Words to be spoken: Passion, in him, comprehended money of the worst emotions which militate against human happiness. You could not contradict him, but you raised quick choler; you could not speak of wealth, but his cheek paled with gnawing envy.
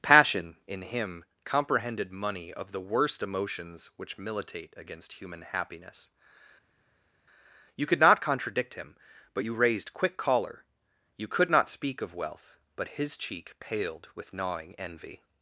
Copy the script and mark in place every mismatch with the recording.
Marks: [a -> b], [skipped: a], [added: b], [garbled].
Passion, in him, comprehended money of the worst emotions which militate against human happiness. You could not contradict him, but you raised quick choler; you could not speak of wealth, but his cheek paled with gnawing envy.